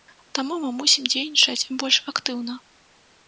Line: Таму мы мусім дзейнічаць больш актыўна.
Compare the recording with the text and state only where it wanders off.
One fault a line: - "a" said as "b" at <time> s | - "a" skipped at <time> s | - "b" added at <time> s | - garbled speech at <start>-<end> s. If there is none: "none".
none